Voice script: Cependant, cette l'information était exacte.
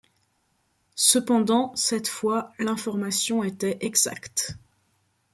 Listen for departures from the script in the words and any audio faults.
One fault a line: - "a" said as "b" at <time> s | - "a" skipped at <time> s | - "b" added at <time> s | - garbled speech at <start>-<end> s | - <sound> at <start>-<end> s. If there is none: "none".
- "fois" added at 2.1 s